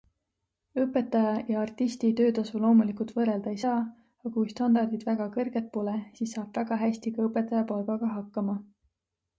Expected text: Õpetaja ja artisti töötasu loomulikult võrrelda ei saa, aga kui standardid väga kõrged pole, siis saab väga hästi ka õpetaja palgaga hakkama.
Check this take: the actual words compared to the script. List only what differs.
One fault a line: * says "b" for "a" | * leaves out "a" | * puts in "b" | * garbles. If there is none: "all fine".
all fine